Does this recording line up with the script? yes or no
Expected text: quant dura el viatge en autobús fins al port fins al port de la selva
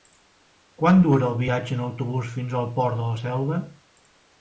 no